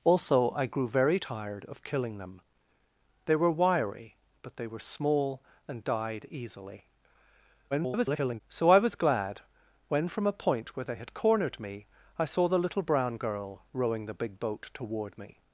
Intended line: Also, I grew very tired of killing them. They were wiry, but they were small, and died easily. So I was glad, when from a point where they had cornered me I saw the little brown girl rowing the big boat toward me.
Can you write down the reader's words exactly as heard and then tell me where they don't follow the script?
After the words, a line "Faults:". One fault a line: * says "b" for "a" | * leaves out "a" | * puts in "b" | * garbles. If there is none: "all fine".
Also, I grew very tired of killing them. They were wiry, but they were small, and died easily. [garbled] So I was glad, when from a point where they had cornered me I saw the little brown girl rowing the big boat toward me.
Faults:
* garbles